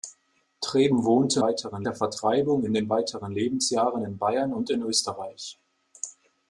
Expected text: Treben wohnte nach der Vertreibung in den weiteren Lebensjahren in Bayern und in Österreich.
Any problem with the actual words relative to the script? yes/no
yes